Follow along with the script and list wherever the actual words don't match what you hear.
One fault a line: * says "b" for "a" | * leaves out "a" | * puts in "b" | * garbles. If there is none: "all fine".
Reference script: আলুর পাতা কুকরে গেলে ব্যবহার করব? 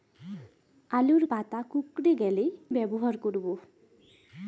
all fine